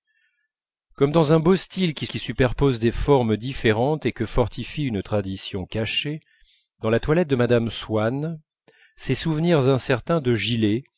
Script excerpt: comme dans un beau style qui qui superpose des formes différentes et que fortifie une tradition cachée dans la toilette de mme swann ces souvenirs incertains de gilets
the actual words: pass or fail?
pass